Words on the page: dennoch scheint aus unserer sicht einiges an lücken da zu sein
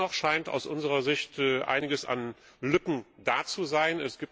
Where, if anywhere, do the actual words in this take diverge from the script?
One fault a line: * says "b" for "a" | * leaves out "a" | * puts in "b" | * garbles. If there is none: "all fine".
all fine